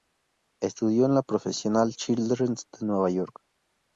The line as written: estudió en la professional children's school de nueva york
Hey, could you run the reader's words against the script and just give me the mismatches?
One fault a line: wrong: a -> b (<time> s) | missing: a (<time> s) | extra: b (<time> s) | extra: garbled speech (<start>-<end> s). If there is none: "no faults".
missing: school (2.6 s)